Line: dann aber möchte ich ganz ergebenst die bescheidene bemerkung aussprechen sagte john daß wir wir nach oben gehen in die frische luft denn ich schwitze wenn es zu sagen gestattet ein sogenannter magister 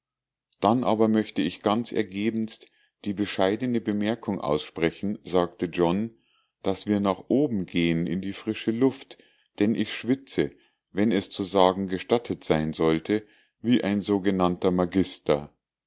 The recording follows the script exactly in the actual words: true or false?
false